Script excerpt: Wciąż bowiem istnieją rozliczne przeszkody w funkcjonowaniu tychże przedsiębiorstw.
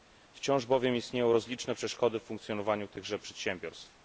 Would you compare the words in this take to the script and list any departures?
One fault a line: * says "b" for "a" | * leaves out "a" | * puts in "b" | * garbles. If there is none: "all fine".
all fine